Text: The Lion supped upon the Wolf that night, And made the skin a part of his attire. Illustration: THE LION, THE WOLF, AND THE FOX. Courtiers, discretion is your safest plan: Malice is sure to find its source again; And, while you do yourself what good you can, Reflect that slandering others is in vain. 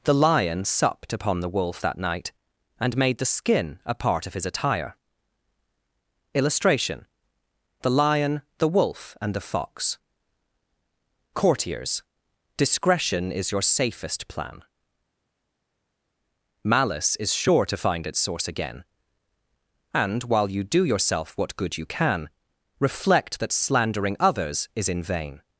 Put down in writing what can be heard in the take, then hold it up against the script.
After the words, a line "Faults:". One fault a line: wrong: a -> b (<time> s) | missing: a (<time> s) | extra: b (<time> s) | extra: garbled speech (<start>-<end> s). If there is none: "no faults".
The Lion supped upon the Wolf that night, And made the skin a part of his attire. Illustration: THE LION, THE WOLF, AND THE FOX. Courtiers, discretion is your safest plan: Malice is sure to find its source again; And, while you do yourself what good you can, Reflect that slandering others is in vain.
Faults:
no faults